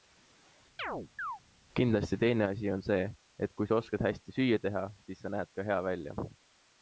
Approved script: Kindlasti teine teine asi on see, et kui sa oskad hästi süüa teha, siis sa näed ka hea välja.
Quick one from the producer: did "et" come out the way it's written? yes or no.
yes